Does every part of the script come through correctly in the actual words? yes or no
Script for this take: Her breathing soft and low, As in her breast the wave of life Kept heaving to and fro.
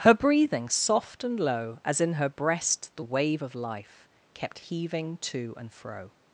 yes